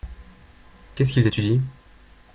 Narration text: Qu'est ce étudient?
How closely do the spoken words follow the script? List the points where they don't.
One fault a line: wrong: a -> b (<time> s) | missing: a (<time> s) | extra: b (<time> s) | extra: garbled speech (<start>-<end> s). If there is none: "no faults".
extra: qu'ils (1.1 s)